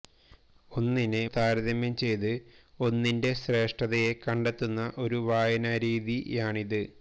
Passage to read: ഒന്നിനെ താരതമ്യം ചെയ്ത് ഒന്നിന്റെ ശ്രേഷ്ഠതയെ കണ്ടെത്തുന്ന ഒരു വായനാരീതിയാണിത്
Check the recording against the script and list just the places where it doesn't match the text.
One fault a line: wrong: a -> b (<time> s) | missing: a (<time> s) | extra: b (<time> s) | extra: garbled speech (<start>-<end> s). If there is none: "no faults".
no faults